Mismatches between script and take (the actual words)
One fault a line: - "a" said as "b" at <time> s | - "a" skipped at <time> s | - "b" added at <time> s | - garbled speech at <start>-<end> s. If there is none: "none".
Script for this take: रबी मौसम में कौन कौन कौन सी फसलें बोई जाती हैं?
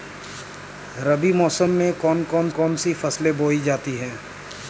none